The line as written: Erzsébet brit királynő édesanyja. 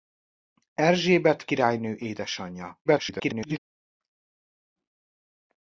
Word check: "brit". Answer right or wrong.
wrong